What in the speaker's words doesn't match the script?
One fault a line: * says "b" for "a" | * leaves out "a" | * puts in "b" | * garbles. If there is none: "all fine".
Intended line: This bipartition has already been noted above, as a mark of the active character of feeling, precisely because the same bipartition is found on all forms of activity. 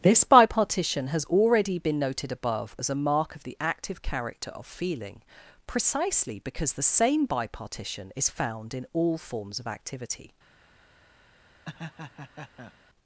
* says "in" for "on"